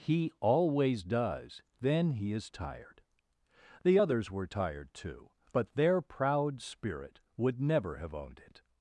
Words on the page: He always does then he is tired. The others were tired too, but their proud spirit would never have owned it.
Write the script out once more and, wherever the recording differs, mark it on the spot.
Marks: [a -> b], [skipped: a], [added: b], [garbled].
He always does then he is tired. The others were tired too, but their proud spirit would never have owned it.